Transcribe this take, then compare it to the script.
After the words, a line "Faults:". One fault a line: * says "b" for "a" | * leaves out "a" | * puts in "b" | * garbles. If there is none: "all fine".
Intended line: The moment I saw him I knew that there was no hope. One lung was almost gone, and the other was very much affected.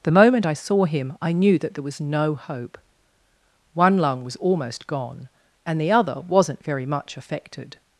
The moment I saw him I knew that there was no hope. One lung was almost gone, and the other wasn't very much affected.
Faults:
* says "wasn't" for "was"